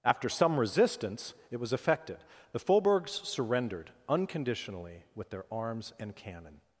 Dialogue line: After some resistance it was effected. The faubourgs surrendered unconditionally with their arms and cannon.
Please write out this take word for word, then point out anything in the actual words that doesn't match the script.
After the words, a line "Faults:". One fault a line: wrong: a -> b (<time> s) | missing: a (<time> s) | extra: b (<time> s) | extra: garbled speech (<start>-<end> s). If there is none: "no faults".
After some resistance it was effected. The faubourgs surrendered unconditionally with their arms and cannon.
Faults:
no faults